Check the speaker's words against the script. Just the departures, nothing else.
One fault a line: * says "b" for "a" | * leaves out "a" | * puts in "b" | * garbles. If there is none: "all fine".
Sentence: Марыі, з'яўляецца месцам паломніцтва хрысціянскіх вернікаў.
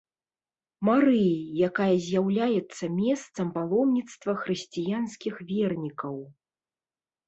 * puts in "якая"